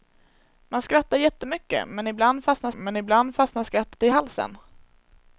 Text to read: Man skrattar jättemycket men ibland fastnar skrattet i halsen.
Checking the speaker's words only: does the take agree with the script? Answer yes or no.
no